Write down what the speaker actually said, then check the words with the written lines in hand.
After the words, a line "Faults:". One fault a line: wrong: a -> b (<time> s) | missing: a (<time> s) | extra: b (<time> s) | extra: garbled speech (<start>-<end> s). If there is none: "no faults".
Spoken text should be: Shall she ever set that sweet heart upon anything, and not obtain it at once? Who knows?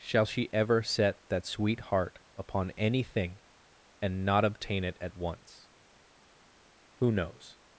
Shall she ever set that sweet heart upon anything, and not obtain it at once? Who knows?
Faults:
no faults